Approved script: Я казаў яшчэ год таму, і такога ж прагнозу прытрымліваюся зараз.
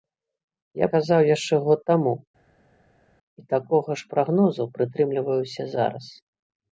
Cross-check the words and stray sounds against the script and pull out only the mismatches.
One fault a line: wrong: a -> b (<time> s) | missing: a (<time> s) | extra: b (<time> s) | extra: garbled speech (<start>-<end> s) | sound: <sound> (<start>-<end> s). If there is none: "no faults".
no faults